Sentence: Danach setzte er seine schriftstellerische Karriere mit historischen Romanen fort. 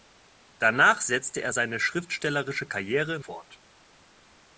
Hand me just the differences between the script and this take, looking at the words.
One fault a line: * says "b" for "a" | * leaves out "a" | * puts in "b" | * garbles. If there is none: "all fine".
* leaves out "mit historischen Romanen"